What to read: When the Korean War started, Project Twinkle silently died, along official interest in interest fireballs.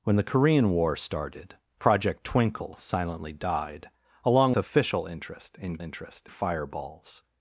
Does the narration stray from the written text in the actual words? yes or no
no